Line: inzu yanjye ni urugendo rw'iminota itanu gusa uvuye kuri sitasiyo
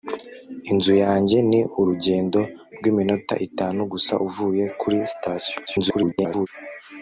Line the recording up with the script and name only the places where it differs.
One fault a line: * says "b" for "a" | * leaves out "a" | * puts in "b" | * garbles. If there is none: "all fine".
* garbles